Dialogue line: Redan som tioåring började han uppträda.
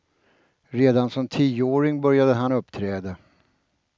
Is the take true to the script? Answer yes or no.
yes